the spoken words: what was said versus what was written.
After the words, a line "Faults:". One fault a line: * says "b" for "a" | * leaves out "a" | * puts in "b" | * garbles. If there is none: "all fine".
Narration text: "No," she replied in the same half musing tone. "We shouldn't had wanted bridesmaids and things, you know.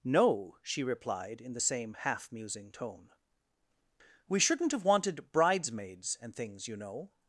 "No," she replied in the same half musing tone. "We shouldn't have wanted bridesmaids and things, you know.
Faults:
* says "have" for "had"